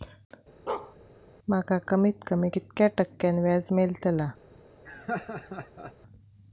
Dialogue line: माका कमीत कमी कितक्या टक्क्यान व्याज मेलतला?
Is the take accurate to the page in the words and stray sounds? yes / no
no